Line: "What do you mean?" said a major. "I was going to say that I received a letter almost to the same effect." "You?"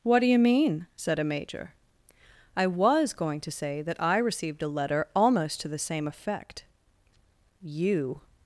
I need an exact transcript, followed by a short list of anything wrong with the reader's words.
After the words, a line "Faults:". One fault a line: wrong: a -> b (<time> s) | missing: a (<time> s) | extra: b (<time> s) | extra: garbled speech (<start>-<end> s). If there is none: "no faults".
"What do you mean?" said a major. "I was going to say that I received a letter almost to the same effect." "You?"
Faults:
no faults